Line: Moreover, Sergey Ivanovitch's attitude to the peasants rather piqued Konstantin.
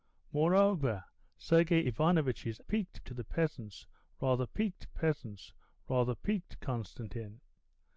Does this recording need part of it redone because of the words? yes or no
yes